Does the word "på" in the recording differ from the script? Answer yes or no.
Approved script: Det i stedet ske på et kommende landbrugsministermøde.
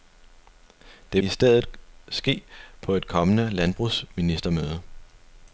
no